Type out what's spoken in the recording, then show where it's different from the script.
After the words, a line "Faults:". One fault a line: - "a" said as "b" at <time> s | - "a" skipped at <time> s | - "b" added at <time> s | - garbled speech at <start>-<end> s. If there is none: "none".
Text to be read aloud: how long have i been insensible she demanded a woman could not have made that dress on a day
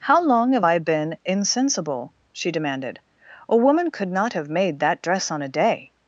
how long have i been insensible she demanded a woman could not have made that dress on a day
Faults:
none